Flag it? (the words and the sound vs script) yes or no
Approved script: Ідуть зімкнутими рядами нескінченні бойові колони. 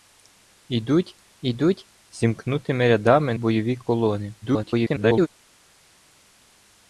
yes